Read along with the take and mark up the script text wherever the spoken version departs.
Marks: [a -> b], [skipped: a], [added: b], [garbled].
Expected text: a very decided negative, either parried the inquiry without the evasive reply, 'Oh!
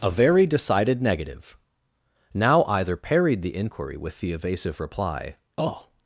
a very decided negative, [added: now] either parried the inquiry [without -> with] the evasive reply, 'Oh!